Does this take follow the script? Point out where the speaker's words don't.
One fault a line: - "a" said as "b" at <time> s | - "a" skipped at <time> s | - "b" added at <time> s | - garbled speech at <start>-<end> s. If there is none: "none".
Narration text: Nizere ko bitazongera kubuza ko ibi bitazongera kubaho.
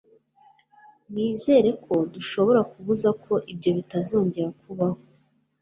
- "bitazongera" said as "dushobora" at 2.1 s
- "ibi" said as "ibyo" at 3.5 s